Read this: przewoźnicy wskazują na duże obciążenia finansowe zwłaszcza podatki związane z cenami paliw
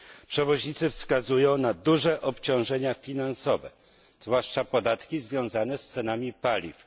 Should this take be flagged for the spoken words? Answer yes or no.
no